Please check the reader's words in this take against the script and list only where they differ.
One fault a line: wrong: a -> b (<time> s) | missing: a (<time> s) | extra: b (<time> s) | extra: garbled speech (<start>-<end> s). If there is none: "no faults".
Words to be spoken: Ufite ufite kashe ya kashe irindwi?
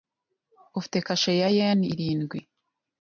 missing: ufite (1.0 s)
wrong: kashe -> yen (1.6 s)